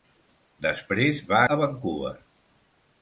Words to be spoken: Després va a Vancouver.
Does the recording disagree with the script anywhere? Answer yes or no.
no